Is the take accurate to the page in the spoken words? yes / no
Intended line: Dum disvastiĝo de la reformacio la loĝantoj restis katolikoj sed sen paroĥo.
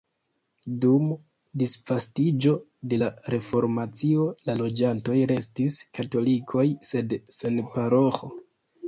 yes